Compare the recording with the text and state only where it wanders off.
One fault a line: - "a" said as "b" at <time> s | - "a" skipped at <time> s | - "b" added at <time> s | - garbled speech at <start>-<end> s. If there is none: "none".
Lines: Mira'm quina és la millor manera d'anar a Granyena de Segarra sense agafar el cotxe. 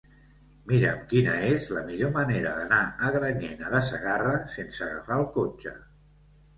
none